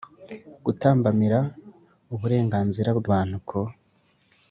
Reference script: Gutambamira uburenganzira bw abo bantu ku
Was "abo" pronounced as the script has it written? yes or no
no